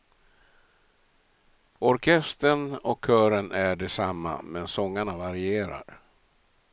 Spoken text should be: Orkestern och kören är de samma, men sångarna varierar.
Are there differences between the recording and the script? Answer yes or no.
no